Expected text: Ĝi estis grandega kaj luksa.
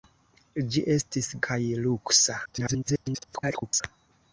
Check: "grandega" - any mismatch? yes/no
yes